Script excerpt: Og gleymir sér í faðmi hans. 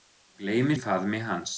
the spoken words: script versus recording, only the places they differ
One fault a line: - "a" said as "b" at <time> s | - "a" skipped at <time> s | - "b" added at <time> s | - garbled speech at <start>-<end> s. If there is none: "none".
- "sér" skipped at 0.8 s